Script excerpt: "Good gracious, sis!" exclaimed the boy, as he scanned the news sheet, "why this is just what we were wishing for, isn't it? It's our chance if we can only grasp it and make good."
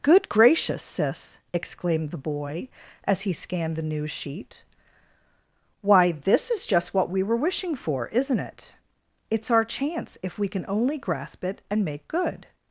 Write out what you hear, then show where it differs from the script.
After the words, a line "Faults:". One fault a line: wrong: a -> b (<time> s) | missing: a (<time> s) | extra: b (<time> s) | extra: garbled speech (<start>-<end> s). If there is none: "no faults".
"Good gracious, sis!" exclaimed the boy, as he scanned the news sheet, "why this is just what we were wishing for, isn't it? It's our chance if we can only grasp it and make good."
Faults:
no faults